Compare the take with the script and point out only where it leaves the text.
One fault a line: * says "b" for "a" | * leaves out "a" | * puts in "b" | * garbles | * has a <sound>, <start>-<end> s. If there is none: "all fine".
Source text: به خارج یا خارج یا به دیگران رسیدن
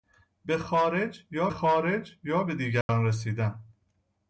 * has a dropout, 2.8-2.9 s